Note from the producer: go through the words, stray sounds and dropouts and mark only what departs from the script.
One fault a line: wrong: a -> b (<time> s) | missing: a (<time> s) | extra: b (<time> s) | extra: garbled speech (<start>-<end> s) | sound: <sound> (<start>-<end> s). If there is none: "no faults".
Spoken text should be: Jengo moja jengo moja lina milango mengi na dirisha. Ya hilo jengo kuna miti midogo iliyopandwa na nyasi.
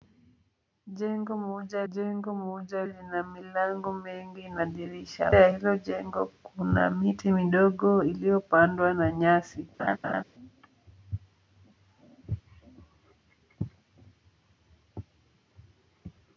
sound: laugh (9.8-10.2 s)